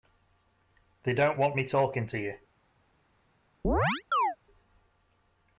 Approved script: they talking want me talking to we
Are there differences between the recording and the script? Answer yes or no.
yes